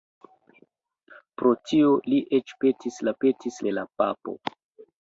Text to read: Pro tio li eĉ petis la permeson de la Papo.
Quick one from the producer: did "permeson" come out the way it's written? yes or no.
no